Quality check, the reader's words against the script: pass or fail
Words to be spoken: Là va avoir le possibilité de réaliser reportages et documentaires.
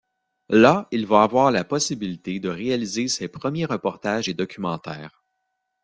fail